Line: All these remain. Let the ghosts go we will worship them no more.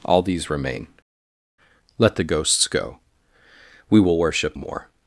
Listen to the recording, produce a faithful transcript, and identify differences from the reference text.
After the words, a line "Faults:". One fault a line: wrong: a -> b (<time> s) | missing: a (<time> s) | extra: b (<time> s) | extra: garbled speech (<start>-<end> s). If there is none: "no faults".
All these remain. Let the ghosts go we will worship more.
Faults:
missing: them no (4.6 s)